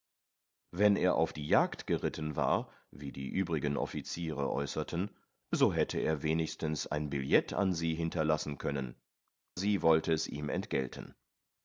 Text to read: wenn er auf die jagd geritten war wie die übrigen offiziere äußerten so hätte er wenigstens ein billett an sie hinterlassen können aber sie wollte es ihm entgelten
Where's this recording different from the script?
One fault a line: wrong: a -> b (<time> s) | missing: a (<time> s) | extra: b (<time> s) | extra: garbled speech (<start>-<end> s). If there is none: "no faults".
missing: aber (9.0 s)